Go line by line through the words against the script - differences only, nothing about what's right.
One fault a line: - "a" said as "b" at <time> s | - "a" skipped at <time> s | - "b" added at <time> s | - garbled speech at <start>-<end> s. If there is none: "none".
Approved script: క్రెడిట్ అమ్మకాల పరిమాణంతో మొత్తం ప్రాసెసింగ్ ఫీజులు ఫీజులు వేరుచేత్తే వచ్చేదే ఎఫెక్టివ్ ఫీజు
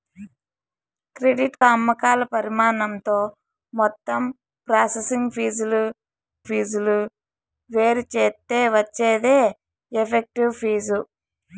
none